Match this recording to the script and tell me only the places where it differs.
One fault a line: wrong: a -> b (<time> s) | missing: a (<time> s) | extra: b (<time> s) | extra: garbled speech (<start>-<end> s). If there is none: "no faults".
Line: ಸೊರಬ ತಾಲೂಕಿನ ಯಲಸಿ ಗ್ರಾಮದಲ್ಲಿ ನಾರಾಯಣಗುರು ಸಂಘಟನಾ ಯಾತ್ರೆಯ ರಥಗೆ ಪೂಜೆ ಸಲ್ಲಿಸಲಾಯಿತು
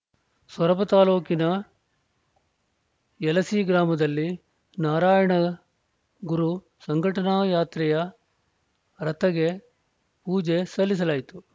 no faults